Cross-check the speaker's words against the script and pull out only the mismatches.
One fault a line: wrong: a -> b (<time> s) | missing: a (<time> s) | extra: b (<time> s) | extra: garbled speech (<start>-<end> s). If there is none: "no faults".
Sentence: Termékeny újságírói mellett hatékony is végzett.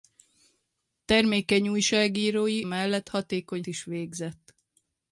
no faults